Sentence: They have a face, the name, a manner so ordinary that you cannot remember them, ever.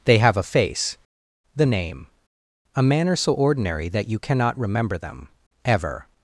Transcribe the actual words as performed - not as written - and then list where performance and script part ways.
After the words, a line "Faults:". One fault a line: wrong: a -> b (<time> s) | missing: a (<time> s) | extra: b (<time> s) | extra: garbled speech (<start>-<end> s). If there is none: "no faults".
They have a face, the name, a manner so ordinary that you cannot remember them, ever.
Faults:
no faults